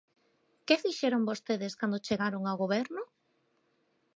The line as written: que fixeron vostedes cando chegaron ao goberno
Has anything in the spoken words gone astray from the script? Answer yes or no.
no